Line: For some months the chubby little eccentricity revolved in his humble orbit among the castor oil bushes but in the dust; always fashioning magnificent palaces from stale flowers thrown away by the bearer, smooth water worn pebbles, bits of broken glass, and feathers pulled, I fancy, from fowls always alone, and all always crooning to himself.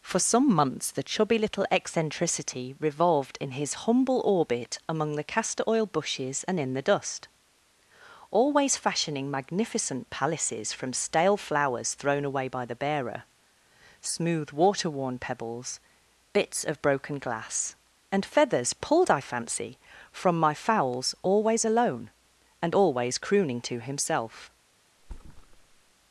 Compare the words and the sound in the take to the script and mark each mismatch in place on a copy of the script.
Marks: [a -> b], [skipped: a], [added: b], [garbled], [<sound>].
For some months the chubby little eccentricity revolved in his humble orbit among the castor oil bushes [but -> and] in the dust; always fashioning magnificent palaces from stale flowers thrown away by the bearer, smooth water worn pebbles, bits of broken glass, and feathers pulled, I fancy, from [added: my] fowls always alone, and [skipped: all] always crooning to himself. [thud]